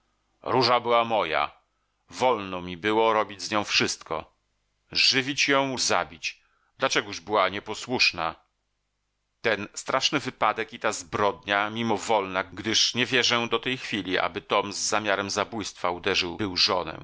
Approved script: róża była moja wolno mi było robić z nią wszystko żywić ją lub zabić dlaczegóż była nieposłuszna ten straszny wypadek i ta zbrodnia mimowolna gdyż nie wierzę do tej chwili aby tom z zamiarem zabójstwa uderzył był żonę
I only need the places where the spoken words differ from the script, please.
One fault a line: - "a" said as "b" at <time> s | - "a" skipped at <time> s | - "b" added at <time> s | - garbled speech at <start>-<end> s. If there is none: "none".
- "lub" skipped at 5.8 s